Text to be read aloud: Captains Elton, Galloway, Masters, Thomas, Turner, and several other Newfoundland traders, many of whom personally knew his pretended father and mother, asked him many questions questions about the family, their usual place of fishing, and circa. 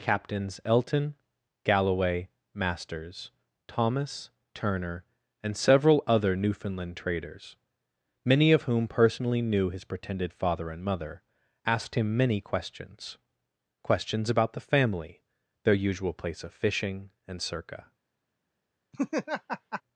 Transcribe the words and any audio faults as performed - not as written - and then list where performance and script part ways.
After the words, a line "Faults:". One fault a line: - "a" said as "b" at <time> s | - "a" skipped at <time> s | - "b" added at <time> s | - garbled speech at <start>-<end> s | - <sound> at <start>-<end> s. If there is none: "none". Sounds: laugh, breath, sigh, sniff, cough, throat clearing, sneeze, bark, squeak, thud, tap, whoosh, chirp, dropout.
Captains Elton, Galloway, Masters, Thomas, Turner, and several other Newfoundland traders, many of whom personally knew his pretended father and mother, asked him many questions questions about the family, their usual place of fishing, and circa.
Faults:
- laugh at 18.9-19.8 s